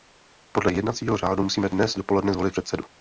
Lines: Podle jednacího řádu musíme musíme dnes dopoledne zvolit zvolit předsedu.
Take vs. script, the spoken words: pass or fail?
fail